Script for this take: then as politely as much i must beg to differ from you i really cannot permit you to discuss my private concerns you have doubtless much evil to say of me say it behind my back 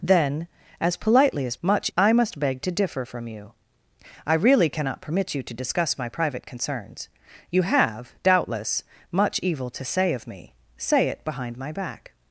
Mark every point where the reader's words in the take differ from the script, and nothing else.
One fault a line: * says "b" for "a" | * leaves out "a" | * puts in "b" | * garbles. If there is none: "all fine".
all fine